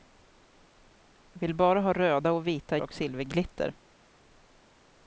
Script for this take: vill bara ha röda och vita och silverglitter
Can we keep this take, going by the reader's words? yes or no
yes